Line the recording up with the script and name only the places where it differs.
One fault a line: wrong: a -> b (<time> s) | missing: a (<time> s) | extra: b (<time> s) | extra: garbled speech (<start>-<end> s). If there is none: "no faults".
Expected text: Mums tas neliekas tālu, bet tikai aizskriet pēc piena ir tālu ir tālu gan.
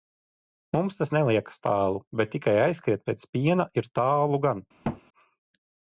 missing: ir tālu (4.4 s)